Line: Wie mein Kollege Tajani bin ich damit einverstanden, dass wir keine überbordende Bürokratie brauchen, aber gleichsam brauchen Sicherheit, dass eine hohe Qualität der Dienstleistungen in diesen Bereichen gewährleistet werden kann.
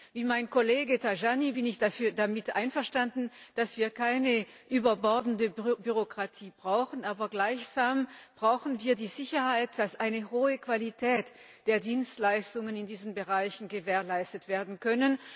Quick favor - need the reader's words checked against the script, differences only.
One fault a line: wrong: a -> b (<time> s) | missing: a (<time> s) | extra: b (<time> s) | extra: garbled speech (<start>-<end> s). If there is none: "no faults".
extra: wir die (8.8 s)